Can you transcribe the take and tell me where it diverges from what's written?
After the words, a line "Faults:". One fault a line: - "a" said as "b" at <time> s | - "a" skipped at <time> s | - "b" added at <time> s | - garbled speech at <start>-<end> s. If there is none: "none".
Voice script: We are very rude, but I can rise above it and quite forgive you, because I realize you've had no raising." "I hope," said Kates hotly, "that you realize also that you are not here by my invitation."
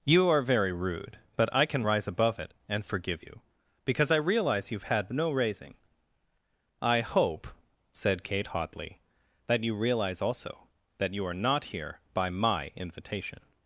You are very rude, but I can rise above it and forgive you, because I realize you've had no raising." "I hope," said Kate hotly, "that you realize also that you are not here by my invitation."
Faults:
- "We" said as "You" at 0.0 s
- "quite" skipped at 2.8 s
- "Kates" said as "Kate" at 8.2 s